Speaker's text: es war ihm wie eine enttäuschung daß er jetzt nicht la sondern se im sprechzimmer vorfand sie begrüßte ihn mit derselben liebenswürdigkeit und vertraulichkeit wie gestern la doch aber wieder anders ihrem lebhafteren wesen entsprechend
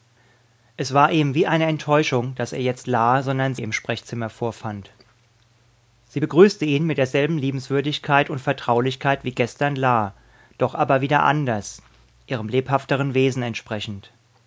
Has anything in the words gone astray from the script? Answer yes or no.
yes